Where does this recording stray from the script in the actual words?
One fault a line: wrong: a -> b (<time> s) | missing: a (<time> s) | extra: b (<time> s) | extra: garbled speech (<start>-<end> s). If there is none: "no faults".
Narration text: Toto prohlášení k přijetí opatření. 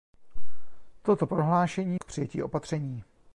no faults